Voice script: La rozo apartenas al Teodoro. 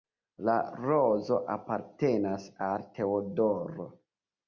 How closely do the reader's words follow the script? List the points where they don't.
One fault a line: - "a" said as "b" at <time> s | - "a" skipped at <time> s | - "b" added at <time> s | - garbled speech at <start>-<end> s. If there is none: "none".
none